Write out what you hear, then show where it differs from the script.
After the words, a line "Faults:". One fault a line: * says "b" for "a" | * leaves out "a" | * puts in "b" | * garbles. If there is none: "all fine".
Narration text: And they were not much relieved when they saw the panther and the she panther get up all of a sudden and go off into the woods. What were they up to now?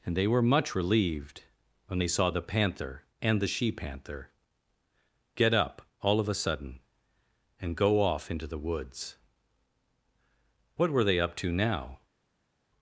And they were much relieved when they saw the panther and the she panther get up all of a sudden and go off into the woods. What were they up to now?
Faults:
* leaves out "not"